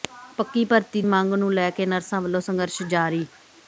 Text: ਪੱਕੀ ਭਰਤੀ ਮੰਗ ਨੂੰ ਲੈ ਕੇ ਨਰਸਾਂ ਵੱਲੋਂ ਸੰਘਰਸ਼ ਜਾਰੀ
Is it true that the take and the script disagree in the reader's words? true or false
false